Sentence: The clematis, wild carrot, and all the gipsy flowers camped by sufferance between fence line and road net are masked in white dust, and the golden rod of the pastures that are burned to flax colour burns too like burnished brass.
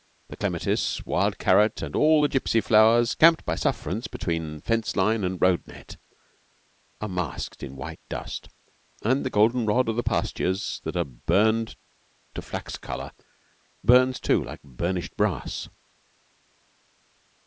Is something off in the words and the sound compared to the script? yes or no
no